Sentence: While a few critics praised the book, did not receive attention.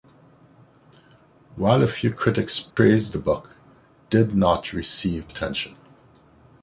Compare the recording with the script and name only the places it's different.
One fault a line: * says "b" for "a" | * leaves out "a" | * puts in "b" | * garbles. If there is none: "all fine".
all fine